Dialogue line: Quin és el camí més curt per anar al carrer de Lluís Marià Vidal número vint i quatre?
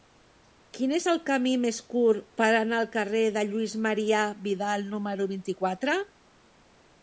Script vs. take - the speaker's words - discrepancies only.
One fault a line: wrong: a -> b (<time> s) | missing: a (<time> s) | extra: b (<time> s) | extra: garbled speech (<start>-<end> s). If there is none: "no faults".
no faults